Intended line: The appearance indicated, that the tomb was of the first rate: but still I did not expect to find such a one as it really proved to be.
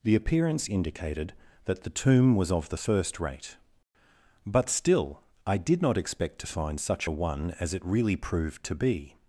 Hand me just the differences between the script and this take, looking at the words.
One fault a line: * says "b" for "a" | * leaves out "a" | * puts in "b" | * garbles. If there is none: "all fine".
all fine